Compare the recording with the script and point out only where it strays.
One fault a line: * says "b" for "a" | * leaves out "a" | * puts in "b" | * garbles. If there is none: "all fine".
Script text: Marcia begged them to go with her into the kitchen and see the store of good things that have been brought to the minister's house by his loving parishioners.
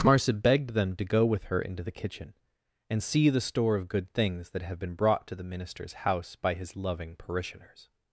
all fine